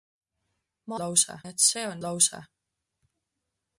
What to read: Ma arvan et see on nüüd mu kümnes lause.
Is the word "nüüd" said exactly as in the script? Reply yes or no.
no